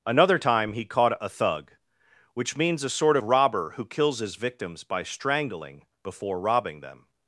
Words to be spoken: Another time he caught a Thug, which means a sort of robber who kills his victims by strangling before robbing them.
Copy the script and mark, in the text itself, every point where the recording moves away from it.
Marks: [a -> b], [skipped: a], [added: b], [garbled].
Another time he caught a Thug, which means a sort [skipped: of] robber who kills his victims by strangling before robbing them.